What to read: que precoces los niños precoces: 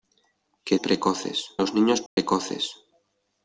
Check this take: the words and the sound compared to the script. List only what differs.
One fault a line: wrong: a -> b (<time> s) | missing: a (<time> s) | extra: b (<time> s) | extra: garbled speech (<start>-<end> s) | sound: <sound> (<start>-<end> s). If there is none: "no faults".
sound: dropout (2.1-2.2 s)